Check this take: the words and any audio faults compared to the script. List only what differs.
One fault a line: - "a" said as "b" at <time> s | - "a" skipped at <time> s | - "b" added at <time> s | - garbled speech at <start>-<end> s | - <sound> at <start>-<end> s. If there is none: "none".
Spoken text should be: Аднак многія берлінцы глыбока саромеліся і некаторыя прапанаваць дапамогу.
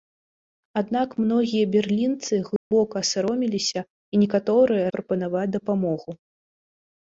- dropout at 2.6-2.7 s